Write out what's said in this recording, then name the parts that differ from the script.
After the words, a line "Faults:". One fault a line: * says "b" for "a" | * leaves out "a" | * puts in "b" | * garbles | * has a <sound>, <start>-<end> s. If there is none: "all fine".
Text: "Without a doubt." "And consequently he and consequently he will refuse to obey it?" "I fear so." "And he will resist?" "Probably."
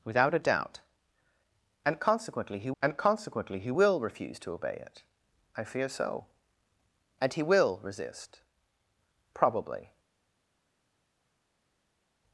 "Without a doubt." "And consequently he and consequently he will refuse to obey it?" "I fear so." "And he will resist?" "Probably."
Faults:
all fine